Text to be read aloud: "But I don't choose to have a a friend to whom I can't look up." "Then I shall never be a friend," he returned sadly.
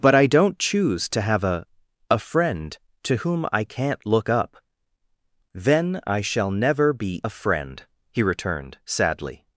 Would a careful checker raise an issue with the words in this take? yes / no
no